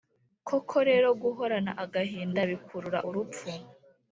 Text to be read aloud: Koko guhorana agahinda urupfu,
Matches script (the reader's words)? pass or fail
fail